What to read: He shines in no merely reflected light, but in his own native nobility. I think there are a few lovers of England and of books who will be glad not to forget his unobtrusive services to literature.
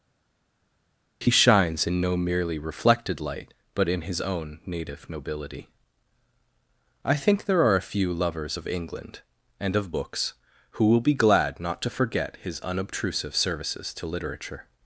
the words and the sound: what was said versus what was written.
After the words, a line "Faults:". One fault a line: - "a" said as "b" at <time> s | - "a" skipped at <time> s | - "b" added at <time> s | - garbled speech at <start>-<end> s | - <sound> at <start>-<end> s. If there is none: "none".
He shines in no merely reflected light, but in his own native nobility. I think there are a few lovers of England and of books who will be glad not to forget his unobtrusive services to literature.
Faults:
none